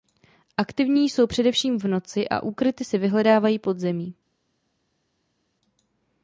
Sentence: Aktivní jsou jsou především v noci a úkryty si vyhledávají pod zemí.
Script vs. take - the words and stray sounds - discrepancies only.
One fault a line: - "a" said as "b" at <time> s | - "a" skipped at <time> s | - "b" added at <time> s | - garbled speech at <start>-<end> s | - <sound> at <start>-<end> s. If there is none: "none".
- "jsou" skipped at 1.3 s